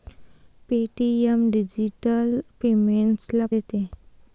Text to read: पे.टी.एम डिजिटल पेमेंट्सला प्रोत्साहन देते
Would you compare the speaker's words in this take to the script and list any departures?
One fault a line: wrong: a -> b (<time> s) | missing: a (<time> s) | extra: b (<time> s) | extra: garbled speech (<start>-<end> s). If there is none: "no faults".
missing: प्रोत्साहन (3.5 s)